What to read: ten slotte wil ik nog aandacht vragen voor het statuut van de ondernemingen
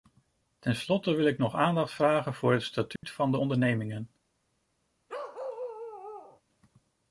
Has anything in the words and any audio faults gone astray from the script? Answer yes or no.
yes